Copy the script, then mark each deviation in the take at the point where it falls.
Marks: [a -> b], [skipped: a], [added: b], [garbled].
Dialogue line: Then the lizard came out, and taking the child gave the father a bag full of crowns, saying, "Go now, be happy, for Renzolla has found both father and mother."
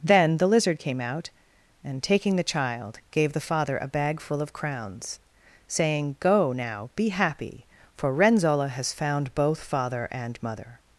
Then the lizard came out, and taking the child gave the father a bag full of crowns, saying, "Go now, be happy, for Renzolla has found both father and mother."